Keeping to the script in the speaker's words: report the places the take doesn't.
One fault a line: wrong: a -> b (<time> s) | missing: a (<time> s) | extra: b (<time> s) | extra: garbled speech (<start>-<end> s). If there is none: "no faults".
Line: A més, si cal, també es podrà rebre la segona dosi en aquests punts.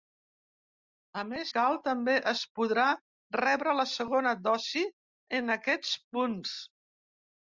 missing: si (1.5 s)